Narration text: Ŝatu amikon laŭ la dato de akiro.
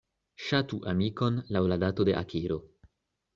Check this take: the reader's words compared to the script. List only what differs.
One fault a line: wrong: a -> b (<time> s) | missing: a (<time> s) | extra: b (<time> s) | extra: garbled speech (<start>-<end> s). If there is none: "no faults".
no faults